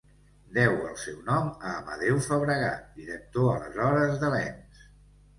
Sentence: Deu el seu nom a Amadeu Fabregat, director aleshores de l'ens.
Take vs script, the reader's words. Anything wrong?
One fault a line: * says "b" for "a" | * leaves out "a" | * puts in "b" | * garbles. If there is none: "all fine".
all fine